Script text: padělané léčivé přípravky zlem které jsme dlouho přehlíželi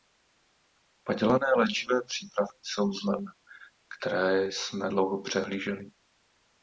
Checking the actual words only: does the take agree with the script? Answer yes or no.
no